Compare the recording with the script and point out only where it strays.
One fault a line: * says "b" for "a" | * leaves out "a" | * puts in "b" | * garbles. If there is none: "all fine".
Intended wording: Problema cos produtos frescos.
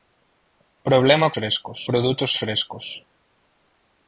* says "frescos" for "cos"